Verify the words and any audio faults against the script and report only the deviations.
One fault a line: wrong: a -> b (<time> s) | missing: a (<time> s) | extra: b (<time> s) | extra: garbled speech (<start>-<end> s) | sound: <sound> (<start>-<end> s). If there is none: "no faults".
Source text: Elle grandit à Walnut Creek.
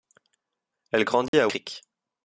sound: dropout (1.3-1.3 s)
missing: Walnut (1.5 s)